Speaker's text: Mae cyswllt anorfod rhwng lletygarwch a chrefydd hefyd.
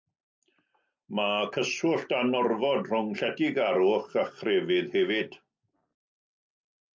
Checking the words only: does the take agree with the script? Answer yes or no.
yes